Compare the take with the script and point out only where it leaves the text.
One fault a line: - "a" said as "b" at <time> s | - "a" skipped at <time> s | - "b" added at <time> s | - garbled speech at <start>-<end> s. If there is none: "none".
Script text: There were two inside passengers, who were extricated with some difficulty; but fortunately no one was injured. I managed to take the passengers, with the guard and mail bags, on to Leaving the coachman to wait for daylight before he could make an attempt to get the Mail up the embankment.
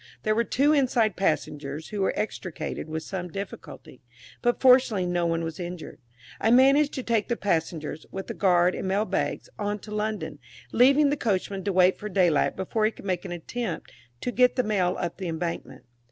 - "London" added at 9.9 s